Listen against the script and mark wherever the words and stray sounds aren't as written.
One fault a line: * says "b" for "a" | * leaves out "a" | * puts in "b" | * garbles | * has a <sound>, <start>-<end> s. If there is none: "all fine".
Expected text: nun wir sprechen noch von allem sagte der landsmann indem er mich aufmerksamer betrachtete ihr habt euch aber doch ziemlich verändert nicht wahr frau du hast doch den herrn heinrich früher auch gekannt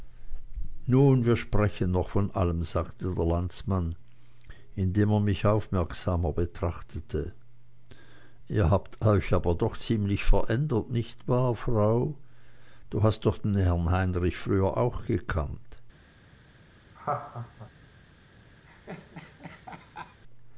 * has a laugh, 16.9-17.7 s
* has a laugh, 18.7-20.2 s